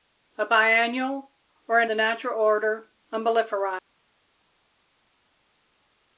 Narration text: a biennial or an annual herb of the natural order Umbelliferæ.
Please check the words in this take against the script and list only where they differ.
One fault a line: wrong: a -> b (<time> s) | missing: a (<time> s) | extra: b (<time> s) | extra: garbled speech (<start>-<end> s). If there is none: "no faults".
missing: annual herb of (1.9 s)